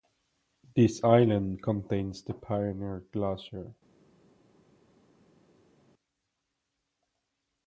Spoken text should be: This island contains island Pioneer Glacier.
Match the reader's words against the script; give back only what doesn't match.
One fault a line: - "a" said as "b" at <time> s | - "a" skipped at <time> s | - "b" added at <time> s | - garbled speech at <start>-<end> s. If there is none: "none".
- "island" said as "the" at 2.2 s